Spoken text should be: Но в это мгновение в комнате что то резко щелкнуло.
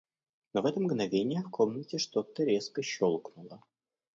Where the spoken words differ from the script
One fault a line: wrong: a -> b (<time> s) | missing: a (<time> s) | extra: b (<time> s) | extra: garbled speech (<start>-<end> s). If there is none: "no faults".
no faults